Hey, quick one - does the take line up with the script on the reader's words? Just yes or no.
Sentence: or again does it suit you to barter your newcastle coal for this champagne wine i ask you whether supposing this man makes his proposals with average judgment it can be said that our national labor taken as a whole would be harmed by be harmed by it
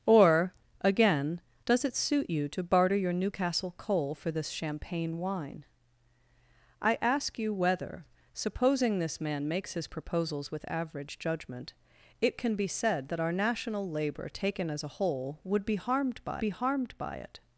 yes